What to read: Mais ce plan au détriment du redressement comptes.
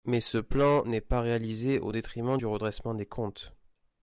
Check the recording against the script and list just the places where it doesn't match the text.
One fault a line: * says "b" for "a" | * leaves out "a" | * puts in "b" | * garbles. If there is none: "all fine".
* puts in "n'est pas réalisé"
* puts in "des"